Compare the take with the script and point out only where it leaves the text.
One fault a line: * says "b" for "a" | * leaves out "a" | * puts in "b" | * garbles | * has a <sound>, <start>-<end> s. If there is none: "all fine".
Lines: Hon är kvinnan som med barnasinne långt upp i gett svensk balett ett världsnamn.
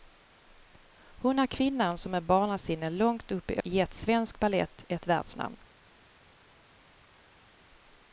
all fine